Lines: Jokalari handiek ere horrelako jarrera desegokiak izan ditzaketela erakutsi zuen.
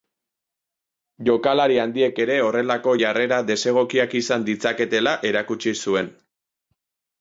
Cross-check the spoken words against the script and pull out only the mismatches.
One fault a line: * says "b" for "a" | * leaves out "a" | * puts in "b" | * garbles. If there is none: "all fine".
all fine